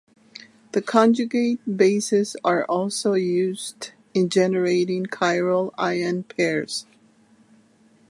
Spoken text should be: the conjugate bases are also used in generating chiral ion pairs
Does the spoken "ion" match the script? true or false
true